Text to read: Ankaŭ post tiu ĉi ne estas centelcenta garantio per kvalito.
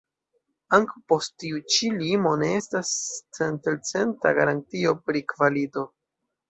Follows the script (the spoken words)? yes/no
no